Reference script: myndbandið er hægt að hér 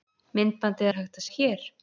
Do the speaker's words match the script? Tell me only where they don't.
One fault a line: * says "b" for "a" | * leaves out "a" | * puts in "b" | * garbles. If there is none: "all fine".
all fine